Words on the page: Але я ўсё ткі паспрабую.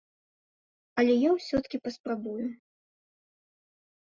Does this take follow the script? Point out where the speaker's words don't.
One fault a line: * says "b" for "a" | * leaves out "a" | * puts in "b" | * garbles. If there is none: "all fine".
all fine